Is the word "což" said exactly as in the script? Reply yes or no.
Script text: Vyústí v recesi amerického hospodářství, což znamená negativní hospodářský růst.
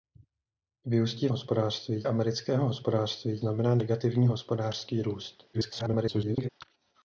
no